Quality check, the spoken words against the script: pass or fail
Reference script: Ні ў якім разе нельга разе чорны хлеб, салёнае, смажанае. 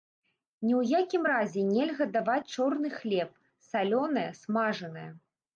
fail